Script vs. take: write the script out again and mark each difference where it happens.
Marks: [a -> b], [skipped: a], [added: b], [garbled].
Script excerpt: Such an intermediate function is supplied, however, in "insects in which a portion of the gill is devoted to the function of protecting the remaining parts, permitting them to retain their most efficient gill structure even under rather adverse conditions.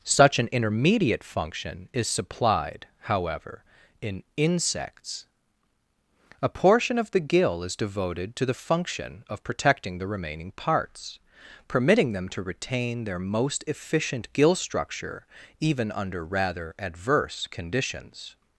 Such an intermediate function is supplied, however, in "insects [skipped: in which] a portion of the gill is devoted to the function of protecting the remaining parts, permitting them to retain their most efficient gill structure even under rather adverse conditions.